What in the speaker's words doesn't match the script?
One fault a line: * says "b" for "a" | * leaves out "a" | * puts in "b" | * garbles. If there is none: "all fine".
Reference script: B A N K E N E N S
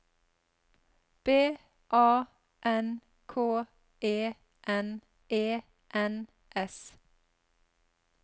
all fine